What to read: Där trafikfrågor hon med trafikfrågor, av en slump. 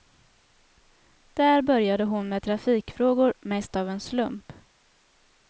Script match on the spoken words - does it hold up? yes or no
no